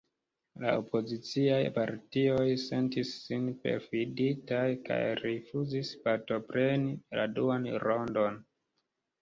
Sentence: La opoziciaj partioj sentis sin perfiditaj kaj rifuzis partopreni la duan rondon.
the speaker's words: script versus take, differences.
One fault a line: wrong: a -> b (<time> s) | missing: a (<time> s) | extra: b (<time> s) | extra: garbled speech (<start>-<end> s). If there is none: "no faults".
no faults